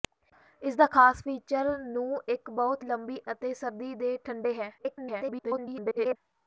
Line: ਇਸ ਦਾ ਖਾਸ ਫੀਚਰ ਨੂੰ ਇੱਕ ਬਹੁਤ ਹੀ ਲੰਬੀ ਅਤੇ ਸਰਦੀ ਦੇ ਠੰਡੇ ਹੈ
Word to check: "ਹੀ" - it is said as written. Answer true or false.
false